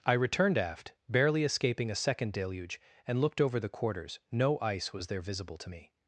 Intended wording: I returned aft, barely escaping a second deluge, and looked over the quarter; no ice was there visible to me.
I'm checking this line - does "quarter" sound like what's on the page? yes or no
no